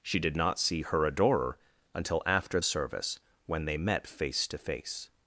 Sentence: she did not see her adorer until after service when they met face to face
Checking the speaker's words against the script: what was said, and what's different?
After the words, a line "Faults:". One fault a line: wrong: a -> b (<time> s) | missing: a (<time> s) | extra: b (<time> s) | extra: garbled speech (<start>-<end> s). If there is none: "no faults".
she did not see her adorer until after service when they met face to face
Faults:
no faults